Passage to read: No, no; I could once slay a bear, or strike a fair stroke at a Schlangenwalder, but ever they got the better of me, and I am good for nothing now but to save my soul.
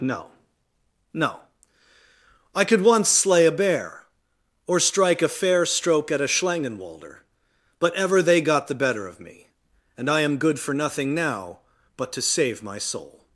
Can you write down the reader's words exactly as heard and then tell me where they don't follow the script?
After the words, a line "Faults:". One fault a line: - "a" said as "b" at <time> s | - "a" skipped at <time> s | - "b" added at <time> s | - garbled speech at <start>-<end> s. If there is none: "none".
No, no; I could once slay a bear, or strike a fair stroke at a Schlangenwalder, but ever they got the better of me, and I am good for nothing now but to save my soul.
Faults:
none